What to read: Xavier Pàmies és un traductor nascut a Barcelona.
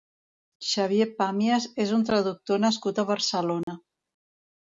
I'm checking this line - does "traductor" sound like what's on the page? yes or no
yes